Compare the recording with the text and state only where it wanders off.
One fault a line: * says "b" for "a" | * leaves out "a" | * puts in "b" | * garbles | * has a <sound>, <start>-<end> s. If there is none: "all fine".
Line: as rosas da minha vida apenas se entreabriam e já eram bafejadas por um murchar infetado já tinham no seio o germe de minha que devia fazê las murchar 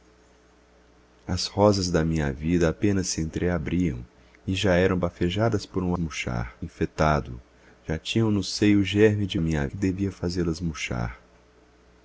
all fine